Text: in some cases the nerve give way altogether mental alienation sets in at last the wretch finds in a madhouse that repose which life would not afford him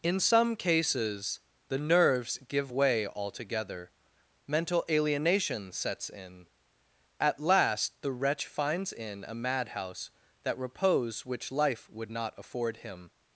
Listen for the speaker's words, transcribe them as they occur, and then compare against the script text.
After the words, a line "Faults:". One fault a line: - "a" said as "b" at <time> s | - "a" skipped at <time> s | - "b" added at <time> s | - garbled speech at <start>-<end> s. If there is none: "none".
in some cases the nerves give way altogether mental alienation sets in at last the wretch finds in a madhouse that repose which life would not afford him
Faults:
- "nerve" said as "nerves" at 1.8 s